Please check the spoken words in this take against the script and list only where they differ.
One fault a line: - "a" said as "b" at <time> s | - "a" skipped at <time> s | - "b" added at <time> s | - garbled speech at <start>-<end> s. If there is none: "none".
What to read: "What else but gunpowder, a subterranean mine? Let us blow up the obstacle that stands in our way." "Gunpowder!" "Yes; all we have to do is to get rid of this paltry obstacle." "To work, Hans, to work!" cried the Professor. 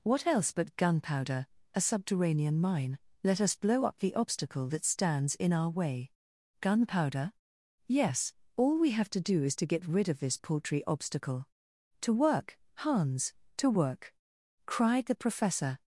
none